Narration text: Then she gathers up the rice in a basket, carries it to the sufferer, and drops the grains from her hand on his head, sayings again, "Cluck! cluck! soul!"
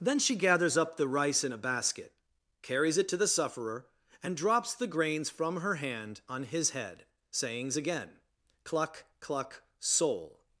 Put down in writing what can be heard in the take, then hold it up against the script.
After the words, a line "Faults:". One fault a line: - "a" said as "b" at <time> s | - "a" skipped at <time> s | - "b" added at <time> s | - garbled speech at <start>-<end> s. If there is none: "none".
Then she gathers up the rice in a basket, carries it to the sufferer, and drops the grains from her hand on his head, sayings again, "Cluck! cluck! soul!"
Faults:
none